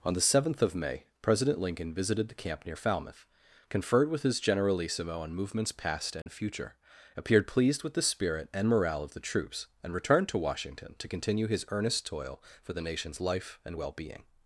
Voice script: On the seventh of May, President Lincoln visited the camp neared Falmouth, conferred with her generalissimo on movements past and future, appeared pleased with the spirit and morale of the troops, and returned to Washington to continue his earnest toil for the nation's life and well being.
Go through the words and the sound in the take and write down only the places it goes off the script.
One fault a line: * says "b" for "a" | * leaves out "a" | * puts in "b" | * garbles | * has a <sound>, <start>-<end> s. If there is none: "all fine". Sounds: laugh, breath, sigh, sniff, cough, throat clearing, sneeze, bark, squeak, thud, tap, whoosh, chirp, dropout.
* says "near" for "neared"
* says "his" for "her"
* has a dropout, 6.2-6.3 s